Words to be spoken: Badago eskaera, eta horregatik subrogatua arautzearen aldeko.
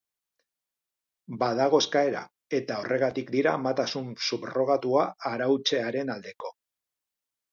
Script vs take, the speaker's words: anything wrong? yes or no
yes